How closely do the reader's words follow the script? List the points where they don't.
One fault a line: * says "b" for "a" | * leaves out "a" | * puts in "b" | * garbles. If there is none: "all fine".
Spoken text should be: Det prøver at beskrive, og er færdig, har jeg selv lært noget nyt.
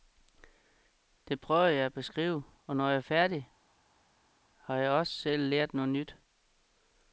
* puts in "jeg"
* puts in "når jeg"
* puts in "også"